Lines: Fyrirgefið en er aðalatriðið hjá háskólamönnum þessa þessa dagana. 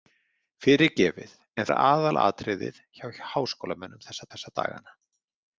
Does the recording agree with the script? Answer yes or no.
yes